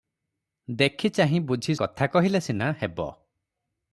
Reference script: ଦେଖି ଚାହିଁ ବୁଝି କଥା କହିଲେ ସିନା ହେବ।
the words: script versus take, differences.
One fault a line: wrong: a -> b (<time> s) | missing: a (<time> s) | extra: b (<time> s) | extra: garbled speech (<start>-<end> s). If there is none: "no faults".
no faults